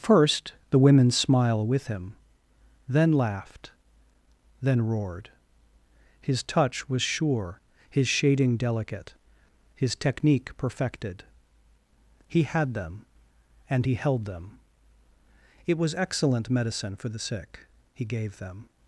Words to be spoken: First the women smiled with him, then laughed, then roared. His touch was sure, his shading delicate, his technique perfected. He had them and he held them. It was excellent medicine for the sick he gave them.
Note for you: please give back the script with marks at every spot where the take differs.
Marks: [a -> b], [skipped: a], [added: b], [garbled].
First the women [smiled -> smile] with him, then laughed, then roared. His touch was sure, his shading delicate, his technique perfected. He had them and he held them. It was excellent medicine for the sick he gave them.